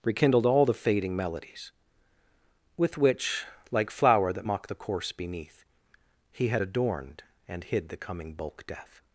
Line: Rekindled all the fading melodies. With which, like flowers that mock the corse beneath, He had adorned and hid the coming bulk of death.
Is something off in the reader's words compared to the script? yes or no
yes